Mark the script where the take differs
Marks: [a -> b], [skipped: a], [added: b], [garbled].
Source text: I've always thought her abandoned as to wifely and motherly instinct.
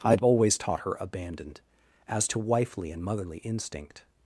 I've always [thought -> taught] her abandoned as to wifely and motherly instinct.